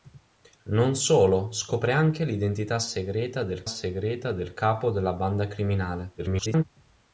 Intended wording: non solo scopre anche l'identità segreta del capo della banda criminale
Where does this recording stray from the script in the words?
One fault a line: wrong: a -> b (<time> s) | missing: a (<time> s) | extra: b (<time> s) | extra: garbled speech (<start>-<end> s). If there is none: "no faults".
extra: segreta del (3.7 s)
extra: garbled speech (6.2-6.6 s)